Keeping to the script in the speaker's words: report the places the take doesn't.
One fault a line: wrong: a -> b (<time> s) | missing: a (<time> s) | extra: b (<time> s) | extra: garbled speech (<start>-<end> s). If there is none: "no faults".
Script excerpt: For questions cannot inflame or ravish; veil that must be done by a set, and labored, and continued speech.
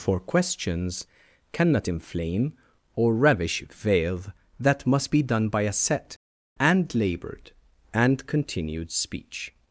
no faults